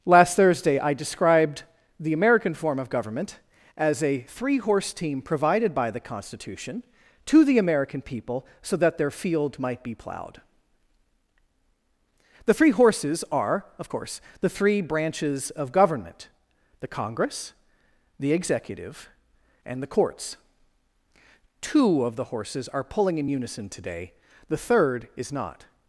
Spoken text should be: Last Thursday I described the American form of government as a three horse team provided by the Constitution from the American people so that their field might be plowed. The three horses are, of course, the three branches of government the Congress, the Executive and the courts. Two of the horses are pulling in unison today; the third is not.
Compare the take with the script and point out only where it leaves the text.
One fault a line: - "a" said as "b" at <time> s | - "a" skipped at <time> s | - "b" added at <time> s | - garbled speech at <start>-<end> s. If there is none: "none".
- "from" said as "to" at 7.2 s